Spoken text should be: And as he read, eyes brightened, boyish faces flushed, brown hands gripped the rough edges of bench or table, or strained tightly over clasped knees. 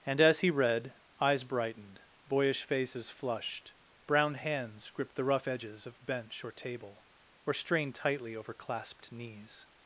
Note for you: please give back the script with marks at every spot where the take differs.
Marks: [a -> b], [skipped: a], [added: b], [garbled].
And as he read, eyes brightened, boyish faces flushed, brown hands gripped the rough edges of bench or table, or strained tightly over clasped knees.